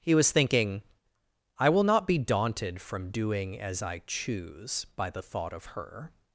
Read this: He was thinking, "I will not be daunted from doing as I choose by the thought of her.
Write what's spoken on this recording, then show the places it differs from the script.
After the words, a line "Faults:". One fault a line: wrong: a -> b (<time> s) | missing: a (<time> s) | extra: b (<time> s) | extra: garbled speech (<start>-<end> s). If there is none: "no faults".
He was thinking, "I will not be daunted from doing as I choose by the thought of her.
Faults:
no faults